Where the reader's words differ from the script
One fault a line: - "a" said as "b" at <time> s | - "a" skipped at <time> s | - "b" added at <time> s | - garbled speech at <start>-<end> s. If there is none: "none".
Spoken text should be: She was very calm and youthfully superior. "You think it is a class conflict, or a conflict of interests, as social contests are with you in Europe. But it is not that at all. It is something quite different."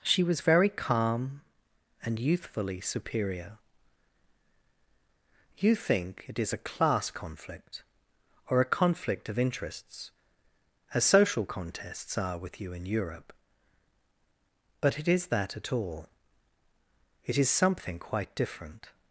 - "not" skipped at 15.3 s